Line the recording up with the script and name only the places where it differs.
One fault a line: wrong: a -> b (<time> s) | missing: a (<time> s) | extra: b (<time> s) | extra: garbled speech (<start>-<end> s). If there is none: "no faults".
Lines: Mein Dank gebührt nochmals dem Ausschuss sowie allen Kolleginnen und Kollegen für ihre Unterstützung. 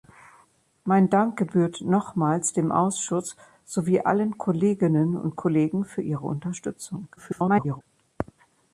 extra: garbled speech (7.2-7.8 s)